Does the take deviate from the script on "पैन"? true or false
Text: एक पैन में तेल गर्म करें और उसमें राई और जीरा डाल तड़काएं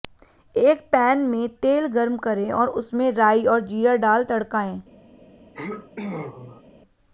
false